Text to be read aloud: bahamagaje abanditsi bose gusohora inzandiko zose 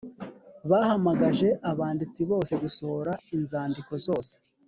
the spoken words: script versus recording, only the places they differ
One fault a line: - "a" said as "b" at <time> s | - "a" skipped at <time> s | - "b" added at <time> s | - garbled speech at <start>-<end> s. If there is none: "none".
none